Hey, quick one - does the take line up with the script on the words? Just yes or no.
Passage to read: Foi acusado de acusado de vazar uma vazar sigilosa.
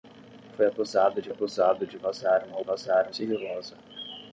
yes